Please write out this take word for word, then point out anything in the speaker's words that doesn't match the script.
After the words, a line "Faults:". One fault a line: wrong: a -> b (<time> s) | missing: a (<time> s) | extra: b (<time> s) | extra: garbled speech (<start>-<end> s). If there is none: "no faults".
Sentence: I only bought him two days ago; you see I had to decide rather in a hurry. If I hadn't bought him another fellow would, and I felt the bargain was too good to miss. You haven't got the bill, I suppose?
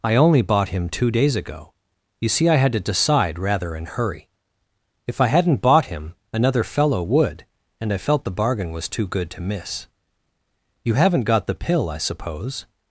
I only bought him two days ago; you see I had to decide rather in hurry. If I hadn't bought him another fellow would, and I felt the bargain was too good to miss. You haven't got the pill, I suppose?
Faults:
missing: a (3.9 s)
wrong: bill -> pill (11.6 s)